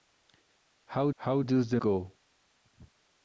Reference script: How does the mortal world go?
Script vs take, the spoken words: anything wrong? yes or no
yes